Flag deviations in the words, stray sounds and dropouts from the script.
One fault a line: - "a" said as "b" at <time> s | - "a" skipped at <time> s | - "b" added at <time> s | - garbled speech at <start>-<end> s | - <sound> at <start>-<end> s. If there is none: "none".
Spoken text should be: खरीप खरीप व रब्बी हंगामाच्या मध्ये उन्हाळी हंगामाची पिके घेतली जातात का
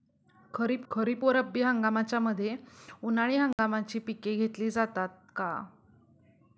- dropout at 3.5-3.6 s